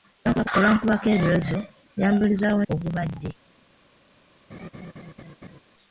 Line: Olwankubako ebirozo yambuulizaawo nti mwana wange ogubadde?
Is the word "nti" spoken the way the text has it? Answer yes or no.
no